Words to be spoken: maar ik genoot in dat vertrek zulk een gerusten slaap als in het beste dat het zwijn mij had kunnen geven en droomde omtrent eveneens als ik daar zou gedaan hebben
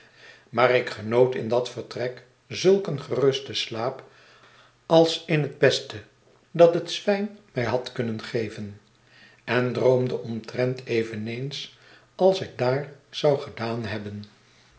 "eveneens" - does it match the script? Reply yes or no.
yes